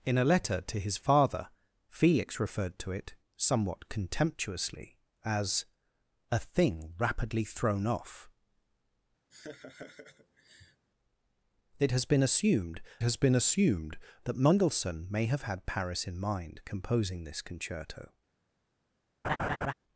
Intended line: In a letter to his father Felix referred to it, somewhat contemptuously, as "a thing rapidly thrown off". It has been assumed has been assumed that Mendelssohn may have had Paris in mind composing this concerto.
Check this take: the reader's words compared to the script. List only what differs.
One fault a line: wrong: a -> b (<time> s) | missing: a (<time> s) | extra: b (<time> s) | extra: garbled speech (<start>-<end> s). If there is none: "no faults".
no faults